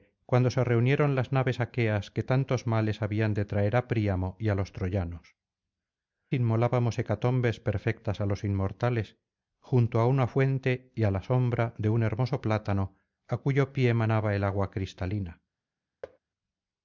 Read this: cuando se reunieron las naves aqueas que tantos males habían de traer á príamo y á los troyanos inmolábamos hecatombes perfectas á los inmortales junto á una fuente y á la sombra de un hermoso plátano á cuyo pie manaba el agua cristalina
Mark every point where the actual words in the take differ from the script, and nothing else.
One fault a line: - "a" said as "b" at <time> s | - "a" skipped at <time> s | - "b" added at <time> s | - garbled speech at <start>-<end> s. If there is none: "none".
none